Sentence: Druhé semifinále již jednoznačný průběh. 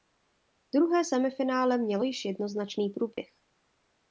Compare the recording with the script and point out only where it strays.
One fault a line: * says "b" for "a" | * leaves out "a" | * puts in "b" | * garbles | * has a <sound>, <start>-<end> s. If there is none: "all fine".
* puts in "mělo"
* has a dropout, 3.1-3.2 s